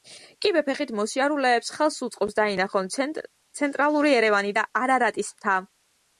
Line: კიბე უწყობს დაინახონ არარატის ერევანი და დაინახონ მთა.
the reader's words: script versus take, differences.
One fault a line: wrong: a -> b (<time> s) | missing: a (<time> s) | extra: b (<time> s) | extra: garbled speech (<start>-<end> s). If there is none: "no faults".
extra: ფეხით მოსიარულეებს ხელს (0.7 s)
wrong: არარატის -> ცენტრალური (3.0 s)
wrong: დაინახონ -> არარატის (4.8 s)